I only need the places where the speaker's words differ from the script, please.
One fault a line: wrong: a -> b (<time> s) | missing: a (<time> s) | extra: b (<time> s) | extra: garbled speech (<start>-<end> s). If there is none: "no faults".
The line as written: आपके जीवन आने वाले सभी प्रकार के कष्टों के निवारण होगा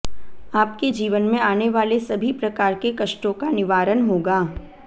extra: में (1.2 s)
wrong: के -> का (3.3 s)